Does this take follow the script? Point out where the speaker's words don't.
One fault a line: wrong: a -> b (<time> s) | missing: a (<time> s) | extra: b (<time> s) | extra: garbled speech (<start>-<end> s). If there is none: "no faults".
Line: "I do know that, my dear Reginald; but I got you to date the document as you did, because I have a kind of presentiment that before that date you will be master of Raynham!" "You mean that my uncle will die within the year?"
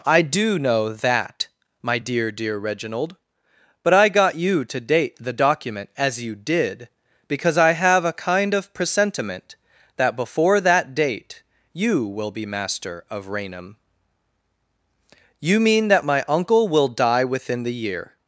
extra: dear (2.3 s)